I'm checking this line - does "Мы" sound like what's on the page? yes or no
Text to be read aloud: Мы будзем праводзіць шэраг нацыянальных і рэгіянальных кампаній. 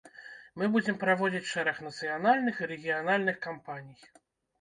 yes